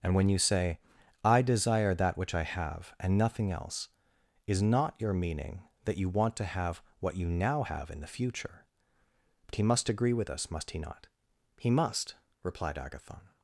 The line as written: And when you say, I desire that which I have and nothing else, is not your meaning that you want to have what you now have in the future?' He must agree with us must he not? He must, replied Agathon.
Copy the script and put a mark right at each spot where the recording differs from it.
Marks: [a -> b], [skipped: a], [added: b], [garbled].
And when you say, I desire that which I have and nothing else, is not your meaning that you want to have what you now have in the future?' [added: but] He must agree with us must he not? He must, replied Agathon.